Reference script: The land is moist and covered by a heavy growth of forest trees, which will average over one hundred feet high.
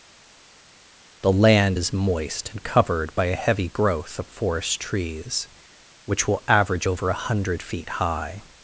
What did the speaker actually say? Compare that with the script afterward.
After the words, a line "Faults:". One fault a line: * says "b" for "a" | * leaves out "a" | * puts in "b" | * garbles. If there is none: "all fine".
The land is moist and covered by a heavy growth of forest trees, which will average over a hundred feet high.
Faults:
* says "a" for "one"